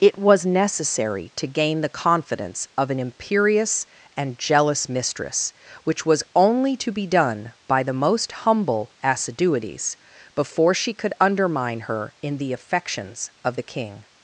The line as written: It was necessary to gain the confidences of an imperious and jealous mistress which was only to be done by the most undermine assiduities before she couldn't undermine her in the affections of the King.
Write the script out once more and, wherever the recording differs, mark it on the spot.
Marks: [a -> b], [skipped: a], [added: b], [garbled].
It was necessary to gain the [confidences -> confidence] of an imperious and jealous mistress which was only to be done by the most [undermine -> humble] assiduities before she [couldn't -> could] undermine her in the affections of the King.